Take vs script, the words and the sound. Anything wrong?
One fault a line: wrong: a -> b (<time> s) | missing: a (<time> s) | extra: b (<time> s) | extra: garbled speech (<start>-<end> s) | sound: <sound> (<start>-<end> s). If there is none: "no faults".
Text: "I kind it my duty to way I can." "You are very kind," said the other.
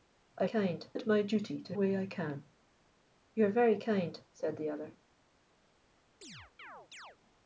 sound: chirp (6.2-7.2 s)